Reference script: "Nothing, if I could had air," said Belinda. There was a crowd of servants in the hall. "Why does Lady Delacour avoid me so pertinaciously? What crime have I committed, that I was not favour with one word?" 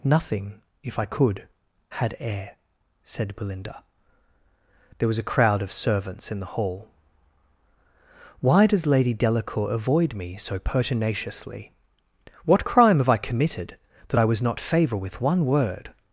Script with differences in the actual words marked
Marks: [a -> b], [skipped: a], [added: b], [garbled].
"Nothing, if I could had air," said Belinda. There was a crowd of servants in the hall. "Why does Lady Delacour avoid me so pertinaciously? What crime have I committed, that I was not favour with one word?"